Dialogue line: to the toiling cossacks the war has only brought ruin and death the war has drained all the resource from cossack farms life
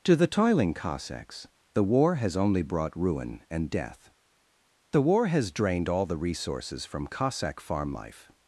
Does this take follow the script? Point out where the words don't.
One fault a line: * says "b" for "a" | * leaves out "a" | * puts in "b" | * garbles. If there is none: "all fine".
* says "resources" for "resource"
* says "farm" for "farms"